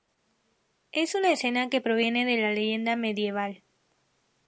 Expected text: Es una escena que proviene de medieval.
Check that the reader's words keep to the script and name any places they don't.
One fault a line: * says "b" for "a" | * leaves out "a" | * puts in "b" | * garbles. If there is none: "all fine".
* puts in "la leyenda"